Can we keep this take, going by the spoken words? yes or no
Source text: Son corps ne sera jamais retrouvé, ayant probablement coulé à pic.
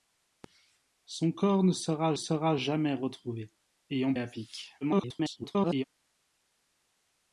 no